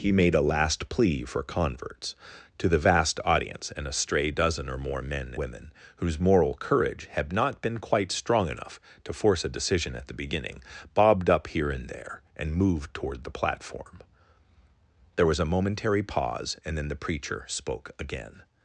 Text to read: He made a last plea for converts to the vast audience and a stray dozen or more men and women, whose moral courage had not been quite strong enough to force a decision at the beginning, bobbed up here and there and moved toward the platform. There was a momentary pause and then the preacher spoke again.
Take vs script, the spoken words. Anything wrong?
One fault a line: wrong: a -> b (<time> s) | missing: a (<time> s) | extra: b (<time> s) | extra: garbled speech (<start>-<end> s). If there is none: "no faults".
missing: and (5.3 s)